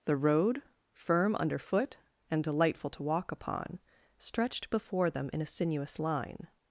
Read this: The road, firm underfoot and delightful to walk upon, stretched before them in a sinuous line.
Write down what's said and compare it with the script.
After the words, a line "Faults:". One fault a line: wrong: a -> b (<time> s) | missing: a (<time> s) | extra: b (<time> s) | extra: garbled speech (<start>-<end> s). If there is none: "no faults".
The road, firm underfoot and delightful to walk upon, stretched before them in a sinuous line.
Faults:
no faults